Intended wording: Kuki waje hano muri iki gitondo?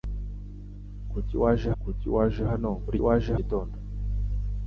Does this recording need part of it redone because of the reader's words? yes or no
yes